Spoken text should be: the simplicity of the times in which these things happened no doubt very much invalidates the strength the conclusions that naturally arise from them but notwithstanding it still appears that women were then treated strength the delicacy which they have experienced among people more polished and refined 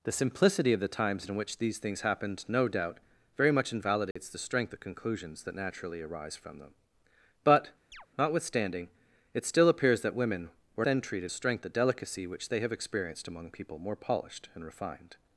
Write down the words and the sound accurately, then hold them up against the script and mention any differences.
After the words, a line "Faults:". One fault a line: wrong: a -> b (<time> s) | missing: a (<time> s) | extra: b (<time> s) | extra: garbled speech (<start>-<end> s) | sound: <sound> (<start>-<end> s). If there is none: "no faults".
the simplicity of the times in which these things happened no doubt very much invalidates the strength the conclusions that naturally arise from them but notwithstanding it still appears that women were then treated strength the delicacy which they have experienced among people more polished and refined
Faults:
sound: dropout (4.1-4.2 s)
sound: chirp (7.9-8.1 s)